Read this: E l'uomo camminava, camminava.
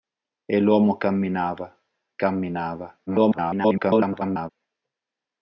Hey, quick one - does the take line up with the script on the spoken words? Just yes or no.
no